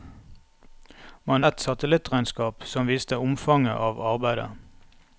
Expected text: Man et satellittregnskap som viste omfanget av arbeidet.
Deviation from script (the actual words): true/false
false